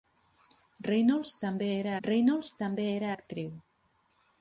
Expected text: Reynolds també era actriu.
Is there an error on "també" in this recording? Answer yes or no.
no